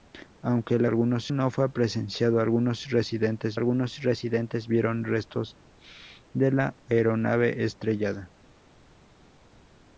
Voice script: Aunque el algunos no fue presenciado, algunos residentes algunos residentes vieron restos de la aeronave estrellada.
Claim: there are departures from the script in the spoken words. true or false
false